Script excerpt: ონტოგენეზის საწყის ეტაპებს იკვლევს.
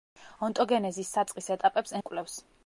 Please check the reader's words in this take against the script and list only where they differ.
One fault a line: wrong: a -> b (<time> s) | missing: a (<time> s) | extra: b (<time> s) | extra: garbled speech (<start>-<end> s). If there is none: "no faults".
no faults